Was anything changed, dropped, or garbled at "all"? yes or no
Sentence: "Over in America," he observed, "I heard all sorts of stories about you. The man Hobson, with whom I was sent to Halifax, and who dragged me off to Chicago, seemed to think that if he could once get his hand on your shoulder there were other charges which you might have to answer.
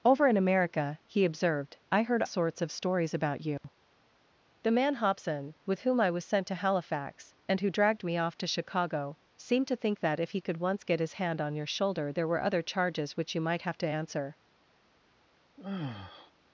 yes